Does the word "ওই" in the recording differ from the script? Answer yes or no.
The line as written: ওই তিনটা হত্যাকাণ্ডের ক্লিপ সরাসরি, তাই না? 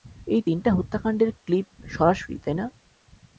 yes